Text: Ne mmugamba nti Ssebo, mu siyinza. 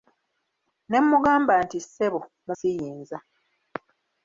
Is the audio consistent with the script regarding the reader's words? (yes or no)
yes